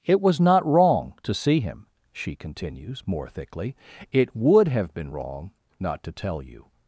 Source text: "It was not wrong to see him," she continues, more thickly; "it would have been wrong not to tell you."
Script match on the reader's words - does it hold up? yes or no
yes